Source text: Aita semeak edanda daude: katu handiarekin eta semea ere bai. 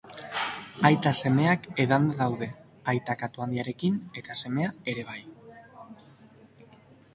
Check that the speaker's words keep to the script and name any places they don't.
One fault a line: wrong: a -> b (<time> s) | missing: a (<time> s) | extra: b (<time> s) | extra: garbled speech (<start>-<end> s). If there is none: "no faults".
extra: aita (3.0 s)